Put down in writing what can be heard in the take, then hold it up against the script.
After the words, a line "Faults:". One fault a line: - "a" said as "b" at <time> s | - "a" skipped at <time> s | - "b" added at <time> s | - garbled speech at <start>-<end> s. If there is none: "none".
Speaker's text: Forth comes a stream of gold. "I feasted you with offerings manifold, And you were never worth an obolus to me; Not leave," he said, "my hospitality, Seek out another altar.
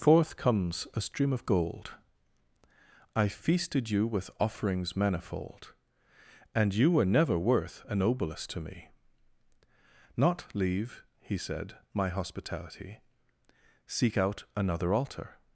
Forth comes a stream of gold. "I feasted you with offerings manifold, And you were never worth an obolus to me; Not leave," he said, "my hospitality, Seek out another altar.
Faults:
none